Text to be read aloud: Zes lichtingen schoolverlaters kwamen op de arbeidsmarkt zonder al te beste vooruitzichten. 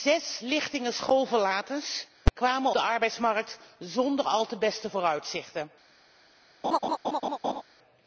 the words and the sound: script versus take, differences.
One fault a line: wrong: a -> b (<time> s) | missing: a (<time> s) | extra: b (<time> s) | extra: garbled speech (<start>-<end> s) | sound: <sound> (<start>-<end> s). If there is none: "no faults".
missing: op (2.7 s)
sound: laugh (6.6-7.6 s)